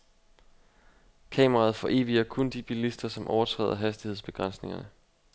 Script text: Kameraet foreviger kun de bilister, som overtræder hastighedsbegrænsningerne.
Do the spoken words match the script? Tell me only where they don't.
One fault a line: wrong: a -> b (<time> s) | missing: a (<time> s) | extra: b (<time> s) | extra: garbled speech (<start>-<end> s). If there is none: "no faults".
no faults